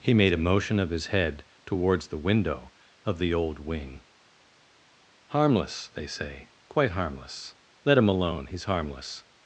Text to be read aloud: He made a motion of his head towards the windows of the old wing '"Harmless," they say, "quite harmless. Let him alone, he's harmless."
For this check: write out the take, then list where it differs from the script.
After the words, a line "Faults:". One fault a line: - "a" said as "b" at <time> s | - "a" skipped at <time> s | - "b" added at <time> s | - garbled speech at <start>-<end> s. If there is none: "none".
He made a motion of his head towards the window of the old wing '"Harmless," they say, "quite harmless. Let him alone, he's harmless."
Faults:
- "windows" said as "window" at 2.2 s